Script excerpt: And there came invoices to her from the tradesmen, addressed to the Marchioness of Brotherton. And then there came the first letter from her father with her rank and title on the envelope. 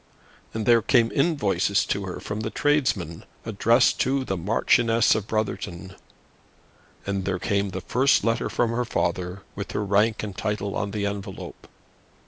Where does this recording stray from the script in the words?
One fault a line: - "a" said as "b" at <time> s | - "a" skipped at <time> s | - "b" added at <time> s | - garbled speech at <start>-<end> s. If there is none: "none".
- "then" skipped at 7.2 s